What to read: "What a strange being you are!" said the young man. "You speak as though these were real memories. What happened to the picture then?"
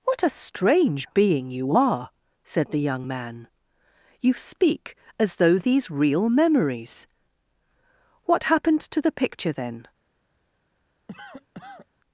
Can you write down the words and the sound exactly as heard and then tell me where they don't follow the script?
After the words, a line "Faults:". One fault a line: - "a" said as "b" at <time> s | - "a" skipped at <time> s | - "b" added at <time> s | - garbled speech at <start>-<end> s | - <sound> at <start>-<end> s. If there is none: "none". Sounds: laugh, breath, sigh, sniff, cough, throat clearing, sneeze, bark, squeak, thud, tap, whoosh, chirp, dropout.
"What a strange being you are!" said the young man. "You speak as though these real memories. What happened to the picture then?"
Faults:
- "were" skipped at 5.9 s
- cough at 11.1-11.9 s